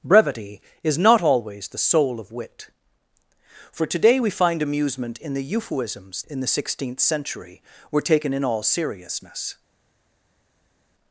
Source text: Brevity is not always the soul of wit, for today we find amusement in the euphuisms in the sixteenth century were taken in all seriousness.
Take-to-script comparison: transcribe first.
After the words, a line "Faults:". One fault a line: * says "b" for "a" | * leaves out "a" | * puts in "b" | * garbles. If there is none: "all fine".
Brevity is not always the soul of wit, for today we find amusement in the euphuisms in the sixteenth century were taken in all seriousness.
Faults:
all fine